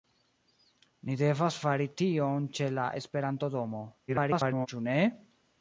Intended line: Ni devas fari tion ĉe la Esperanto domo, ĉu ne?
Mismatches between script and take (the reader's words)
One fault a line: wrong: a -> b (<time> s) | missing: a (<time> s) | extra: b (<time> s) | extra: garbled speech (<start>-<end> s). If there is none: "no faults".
extra: garbled speech (4.1-4.7 s)